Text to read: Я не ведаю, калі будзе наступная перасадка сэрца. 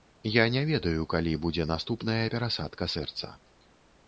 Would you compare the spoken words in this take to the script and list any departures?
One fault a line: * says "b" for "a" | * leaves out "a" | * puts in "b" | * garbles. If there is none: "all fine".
all fine